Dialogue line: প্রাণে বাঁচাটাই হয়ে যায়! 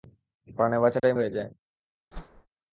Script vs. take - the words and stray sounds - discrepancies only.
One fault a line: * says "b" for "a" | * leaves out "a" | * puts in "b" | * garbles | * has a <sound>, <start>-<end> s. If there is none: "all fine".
* has a dropout, 1.0-1.0 s
* has a whoosh, 2.1-2.5 s